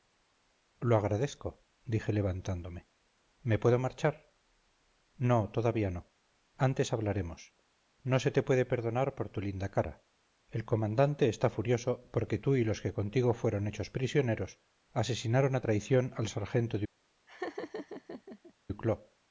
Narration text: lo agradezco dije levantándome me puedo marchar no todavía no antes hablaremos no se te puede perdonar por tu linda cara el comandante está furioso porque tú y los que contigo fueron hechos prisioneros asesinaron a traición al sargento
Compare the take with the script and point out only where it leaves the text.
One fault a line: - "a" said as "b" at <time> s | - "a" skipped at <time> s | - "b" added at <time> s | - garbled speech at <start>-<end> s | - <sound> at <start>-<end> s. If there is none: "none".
- laugh at 17.3-18.5 s